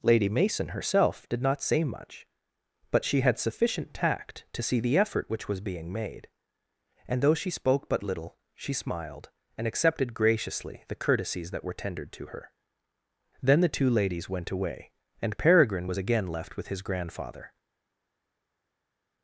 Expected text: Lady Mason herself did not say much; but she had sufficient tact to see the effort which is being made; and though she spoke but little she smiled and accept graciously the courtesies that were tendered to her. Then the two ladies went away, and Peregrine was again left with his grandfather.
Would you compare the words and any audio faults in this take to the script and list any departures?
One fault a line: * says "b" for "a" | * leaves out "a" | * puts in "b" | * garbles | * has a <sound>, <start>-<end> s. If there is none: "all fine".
* says "was" for "is"
* says "accepted" for "accept"